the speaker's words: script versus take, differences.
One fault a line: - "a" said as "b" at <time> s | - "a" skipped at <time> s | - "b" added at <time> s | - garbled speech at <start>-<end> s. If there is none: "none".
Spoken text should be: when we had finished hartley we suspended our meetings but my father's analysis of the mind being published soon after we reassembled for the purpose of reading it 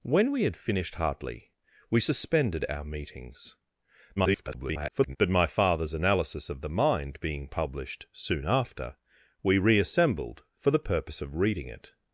- garbled speech at 4.2-5.2 s